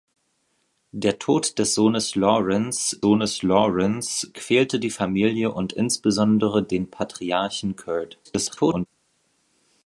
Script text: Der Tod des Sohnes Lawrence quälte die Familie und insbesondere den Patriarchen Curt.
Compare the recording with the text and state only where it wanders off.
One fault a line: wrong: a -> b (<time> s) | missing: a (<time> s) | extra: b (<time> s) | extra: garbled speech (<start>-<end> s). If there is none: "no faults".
extra: Sohnes Lawrence (3.0 s)
extra: garbled speech (8.2-8.9 s)